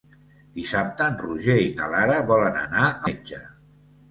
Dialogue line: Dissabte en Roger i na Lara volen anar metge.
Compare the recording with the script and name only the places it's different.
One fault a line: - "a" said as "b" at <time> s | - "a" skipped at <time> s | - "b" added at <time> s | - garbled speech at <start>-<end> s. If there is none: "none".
none